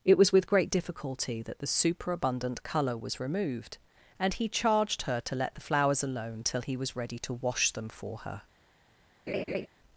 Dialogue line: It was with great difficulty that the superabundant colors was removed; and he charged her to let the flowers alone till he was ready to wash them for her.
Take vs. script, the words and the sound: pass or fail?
fail